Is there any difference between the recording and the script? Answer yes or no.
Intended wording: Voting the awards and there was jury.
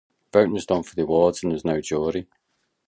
yes